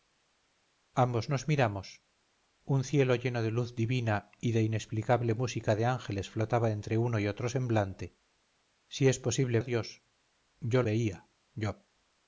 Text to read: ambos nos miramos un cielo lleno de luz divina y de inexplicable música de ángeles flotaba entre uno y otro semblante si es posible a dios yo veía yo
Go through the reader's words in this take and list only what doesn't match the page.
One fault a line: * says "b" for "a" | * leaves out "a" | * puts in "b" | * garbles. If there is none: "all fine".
all fine